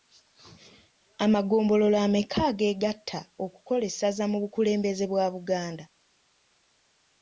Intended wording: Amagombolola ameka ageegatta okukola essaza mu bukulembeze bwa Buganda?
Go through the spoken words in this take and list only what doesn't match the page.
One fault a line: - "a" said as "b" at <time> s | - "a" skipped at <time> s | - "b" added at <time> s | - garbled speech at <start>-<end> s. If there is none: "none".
none